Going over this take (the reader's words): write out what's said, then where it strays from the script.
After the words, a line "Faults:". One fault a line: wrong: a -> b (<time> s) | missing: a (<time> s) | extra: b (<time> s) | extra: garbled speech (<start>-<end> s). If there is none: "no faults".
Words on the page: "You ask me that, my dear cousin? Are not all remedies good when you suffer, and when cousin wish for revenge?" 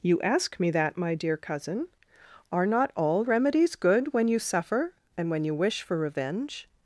"You ask me that, my dear cousin? Are not all remedies good when you suffer, and when you wish for revenge?"
Faults:
wrong: cousin -> you (5.4 s)